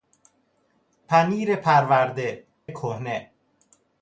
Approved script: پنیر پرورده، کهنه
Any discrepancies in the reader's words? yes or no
no